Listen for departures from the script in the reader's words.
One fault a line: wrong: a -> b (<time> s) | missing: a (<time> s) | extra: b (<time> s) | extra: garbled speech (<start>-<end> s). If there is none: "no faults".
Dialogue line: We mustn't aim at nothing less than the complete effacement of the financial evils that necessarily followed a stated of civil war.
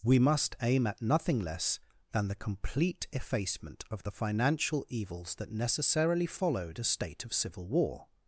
wrong: mustn't -> must (0.2 s)
wrong: stated -> state (6.8 s)